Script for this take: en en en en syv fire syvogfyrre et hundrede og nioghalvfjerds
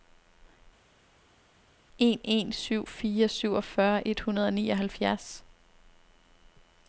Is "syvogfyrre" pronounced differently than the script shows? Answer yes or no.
no